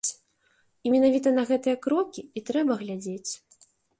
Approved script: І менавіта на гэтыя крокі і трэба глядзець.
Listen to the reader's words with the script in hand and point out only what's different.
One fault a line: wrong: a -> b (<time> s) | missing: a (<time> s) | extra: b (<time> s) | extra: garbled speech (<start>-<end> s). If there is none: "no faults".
no faults